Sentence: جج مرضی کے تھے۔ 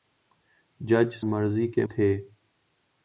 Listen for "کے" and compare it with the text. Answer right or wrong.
right